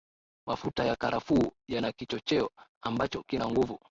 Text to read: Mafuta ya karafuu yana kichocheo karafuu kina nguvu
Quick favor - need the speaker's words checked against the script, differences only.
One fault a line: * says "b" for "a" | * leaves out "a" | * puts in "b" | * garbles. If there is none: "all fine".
* says "ambacho" for "karafuu"